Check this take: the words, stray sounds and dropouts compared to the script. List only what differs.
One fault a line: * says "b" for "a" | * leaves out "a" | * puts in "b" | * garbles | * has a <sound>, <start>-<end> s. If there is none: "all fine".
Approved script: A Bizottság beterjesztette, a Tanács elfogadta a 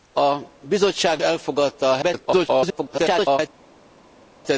* leaves out "beterjesztette a Tanács"
* garbles